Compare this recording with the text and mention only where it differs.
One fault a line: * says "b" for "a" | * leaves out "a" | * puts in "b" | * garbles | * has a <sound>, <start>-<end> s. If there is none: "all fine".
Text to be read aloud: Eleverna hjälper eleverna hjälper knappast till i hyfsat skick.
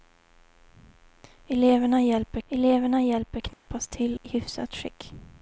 * has a dropout, 3.5-3.7 s